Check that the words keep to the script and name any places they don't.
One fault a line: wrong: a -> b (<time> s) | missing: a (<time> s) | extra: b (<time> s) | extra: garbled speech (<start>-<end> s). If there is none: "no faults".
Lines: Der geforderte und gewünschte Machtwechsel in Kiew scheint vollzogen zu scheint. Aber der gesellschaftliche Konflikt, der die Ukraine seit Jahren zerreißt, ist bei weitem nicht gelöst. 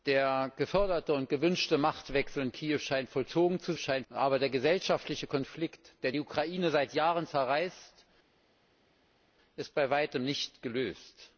no faults